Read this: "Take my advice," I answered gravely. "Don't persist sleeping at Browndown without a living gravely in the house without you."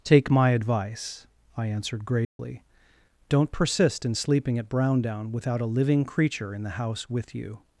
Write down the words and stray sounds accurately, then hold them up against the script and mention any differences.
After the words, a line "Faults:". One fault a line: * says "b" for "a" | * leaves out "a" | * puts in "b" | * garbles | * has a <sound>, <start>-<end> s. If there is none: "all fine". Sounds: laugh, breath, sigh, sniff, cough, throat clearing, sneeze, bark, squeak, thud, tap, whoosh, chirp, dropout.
"Take my advice," I answered gravely. "Don't persist in sleeping at Browndown without a living creature in the house with you."
Faults:
* has a dropout, 2.2-2.4 s
* puts in "in"
* says "creature" for "gravely"
* says "with" for "without"